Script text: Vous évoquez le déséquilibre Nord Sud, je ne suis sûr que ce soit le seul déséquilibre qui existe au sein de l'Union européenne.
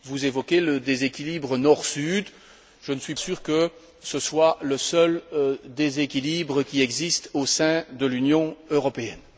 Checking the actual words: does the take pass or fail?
pass